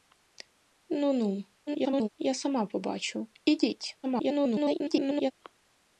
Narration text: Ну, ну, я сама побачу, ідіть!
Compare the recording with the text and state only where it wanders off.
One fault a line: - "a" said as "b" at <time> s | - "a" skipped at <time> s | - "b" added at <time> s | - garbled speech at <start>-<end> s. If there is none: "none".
- garbled speech at 1.7-2.1 s
- garbled speech at 4.0-5.3 s